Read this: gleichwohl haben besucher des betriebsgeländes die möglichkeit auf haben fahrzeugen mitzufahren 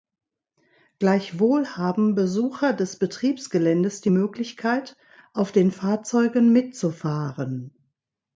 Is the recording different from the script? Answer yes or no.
yes